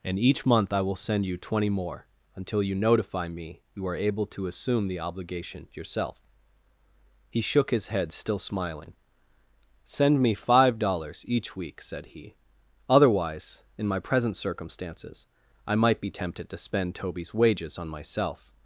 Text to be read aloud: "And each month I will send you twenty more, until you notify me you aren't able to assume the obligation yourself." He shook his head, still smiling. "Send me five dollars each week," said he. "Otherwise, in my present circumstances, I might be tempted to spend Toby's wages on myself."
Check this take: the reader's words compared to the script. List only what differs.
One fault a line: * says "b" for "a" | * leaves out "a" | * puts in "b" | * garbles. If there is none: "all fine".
* says "are" for "aren't"